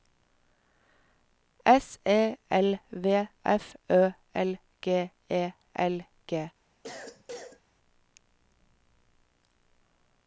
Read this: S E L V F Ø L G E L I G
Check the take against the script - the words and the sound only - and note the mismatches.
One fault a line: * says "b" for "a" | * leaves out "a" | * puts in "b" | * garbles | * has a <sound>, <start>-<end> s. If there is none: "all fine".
* leaves out "I"
* has a cough, 6.8-7.6 s